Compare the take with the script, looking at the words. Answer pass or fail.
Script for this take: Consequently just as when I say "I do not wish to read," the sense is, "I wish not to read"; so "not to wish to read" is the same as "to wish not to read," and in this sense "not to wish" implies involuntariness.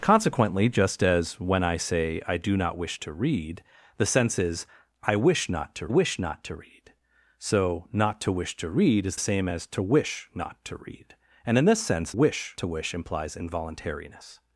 fail